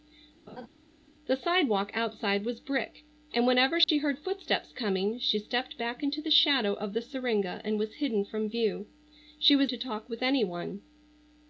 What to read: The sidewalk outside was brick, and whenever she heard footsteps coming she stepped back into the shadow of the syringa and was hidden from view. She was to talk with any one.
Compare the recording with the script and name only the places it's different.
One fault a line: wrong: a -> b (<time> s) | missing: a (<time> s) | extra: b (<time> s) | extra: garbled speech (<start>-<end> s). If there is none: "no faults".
no faults